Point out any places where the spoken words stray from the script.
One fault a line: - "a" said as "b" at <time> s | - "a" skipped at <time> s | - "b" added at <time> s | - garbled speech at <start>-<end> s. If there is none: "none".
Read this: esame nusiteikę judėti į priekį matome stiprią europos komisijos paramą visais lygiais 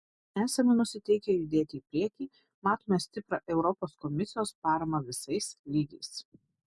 none